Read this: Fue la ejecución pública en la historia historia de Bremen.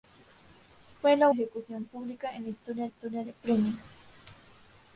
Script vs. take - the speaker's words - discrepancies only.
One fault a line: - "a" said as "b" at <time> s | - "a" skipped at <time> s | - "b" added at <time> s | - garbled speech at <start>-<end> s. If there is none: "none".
none